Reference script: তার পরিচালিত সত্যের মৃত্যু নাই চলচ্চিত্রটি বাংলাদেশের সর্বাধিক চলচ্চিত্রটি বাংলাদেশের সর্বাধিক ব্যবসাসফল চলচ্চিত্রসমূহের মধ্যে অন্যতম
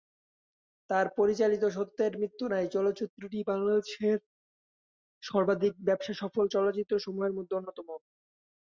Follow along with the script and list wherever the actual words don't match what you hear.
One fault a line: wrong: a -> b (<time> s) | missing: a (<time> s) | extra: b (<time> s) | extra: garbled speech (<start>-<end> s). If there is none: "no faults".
missing: চলচ্চিত্রটি বাংলাদেশের সর্বাধিক (5.7 s)